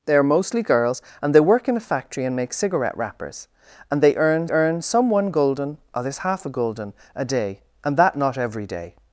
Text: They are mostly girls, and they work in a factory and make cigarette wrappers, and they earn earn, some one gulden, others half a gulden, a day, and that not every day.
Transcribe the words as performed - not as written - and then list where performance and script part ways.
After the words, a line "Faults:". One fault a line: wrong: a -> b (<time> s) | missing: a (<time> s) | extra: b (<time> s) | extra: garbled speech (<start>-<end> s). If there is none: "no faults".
They are mostly girls, and they work in a factory and make cigarette wrappers, and they earn earn, some one gulden, others half a gulden, a day, and that not every day.
Faults:
no faults